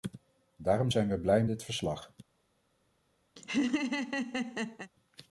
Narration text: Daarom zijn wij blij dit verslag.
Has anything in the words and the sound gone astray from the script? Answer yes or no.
yes